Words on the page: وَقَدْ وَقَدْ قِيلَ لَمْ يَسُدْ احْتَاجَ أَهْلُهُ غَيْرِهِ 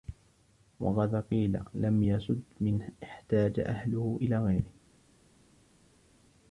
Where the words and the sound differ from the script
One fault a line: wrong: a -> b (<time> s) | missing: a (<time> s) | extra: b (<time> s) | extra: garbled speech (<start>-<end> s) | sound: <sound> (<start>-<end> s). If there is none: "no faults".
missing: وَقَدْ (1.1 s)
extra: مَنْ (2.6 s)
extra: إلَى (4.2 s)